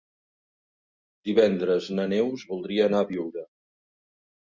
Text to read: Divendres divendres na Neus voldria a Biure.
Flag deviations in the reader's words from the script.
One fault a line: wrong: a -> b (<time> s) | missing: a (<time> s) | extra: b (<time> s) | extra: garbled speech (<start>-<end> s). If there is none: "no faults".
missing: divendres (1.9 s)
extra: anar (2.9 s)